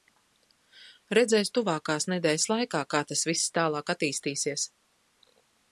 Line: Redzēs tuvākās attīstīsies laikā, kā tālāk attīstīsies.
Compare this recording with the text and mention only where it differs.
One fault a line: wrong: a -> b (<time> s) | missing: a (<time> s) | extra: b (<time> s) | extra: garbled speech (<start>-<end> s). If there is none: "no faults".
wrong: attīstīsies -> nedēļas (2.1 s)
extra: tas viss (3.1 s)